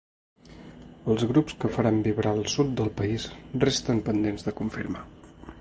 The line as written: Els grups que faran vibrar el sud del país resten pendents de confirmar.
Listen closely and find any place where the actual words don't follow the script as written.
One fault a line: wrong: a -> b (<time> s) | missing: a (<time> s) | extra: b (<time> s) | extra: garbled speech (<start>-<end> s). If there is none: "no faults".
no faults